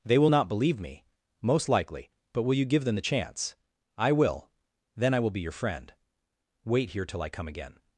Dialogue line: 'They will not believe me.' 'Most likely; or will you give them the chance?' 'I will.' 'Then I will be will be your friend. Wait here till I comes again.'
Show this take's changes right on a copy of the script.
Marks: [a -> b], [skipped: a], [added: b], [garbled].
'They will not believe me.' 'Most likely; [or -> but] will you give them the chance?' 'I will.' 'Then I will be [skipped: will be] your friend. Wait here till I [comes -> come] again.'